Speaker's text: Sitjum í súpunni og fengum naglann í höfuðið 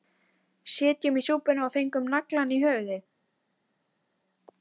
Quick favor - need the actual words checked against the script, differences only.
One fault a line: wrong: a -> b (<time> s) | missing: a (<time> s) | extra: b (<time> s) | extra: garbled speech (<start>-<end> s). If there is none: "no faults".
no faults